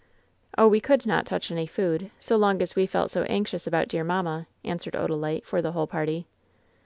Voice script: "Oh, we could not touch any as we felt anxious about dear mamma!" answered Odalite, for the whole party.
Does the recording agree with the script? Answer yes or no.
no